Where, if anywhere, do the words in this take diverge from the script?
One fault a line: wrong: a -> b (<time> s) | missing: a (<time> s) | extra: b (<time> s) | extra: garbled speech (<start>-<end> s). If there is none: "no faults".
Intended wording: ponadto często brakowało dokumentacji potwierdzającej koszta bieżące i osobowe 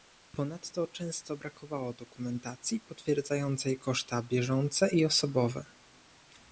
no faults